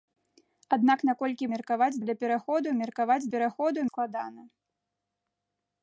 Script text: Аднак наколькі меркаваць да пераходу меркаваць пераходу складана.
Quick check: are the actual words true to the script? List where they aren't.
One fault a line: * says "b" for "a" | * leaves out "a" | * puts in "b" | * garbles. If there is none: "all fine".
all fine